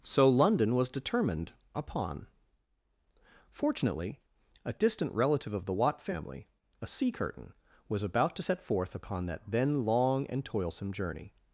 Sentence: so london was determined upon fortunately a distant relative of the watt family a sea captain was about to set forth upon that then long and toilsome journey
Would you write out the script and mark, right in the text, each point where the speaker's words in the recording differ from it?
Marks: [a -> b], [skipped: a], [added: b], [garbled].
so london was determined upon fortunately a distant relative of the watt family a sea [captain -> curtain] was about to set forth upon that then long and toilsome journey